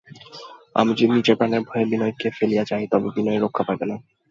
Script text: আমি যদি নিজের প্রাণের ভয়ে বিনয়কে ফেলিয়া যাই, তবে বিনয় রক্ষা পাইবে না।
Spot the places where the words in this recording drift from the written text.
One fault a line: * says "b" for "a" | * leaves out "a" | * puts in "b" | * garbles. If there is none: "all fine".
all fine